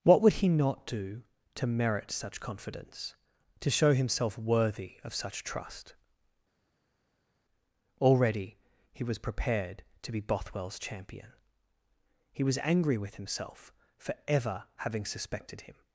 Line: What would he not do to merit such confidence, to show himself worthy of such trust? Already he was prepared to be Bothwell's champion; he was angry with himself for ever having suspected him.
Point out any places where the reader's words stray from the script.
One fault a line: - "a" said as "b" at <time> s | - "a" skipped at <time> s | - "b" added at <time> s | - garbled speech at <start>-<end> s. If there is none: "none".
none